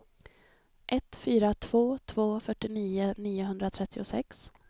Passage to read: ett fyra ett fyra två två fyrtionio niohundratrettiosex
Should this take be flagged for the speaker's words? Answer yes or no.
yes